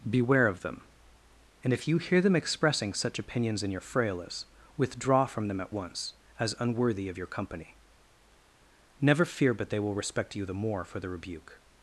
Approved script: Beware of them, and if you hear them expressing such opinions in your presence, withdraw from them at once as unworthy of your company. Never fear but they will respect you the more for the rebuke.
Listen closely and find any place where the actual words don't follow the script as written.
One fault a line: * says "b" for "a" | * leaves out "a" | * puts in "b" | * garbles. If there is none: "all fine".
* says "frailes" for "presence"